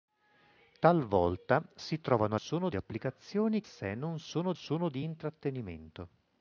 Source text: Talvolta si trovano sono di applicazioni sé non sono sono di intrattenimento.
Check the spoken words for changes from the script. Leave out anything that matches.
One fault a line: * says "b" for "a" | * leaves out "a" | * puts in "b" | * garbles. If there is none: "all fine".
all fine